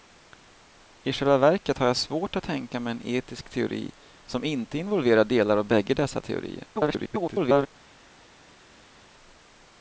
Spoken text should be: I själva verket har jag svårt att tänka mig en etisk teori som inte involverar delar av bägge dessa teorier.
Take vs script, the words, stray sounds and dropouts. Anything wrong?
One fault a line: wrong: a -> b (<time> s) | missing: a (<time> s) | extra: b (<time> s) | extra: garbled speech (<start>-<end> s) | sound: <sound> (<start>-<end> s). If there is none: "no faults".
extra: garbled speech (6.7-7.7 s)